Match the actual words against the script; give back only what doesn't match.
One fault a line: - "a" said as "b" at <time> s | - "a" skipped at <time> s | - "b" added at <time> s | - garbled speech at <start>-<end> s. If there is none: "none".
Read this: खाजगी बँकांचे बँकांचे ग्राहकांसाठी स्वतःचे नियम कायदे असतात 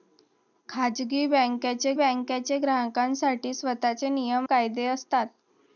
none